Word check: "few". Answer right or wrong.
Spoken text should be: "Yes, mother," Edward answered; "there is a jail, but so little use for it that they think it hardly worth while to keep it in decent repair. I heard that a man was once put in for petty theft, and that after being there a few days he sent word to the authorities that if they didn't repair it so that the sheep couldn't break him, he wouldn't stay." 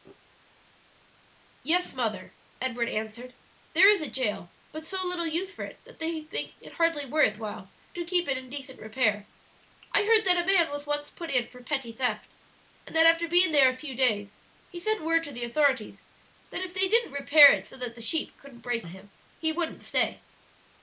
right